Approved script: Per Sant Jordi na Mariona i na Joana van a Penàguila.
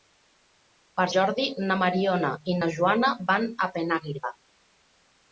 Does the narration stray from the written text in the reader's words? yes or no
yes